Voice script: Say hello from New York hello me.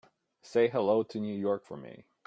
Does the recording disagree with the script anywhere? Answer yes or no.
yes